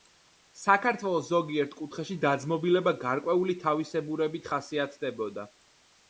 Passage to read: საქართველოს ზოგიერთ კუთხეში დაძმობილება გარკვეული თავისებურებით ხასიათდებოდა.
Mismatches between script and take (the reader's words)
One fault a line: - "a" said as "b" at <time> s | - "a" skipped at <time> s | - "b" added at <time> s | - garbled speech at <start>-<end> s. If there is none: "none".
none